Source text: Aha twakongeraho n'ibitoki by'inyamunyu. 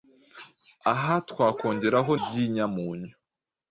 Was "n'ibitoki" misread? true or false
true